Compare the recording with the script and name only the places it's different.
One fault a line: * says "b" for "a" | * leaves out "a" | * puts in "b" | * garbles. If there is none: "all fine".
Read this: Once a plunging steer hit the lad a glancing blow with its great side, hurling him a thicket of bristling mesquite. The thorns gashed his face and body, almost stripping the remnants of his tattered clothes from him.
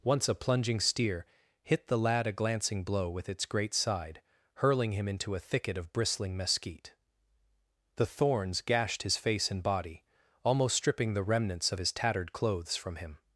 * puts in "into"